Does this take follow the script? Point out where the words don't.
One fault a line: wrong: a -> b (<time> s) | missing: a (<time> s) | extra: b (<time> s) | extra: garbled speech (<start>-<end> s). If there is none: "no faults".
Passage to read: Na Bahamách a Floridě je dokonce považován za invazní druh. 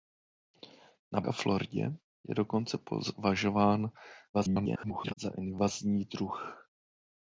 missing: Bahamách (1.2 s)
extra: garbled speech (4.3-5.1 s)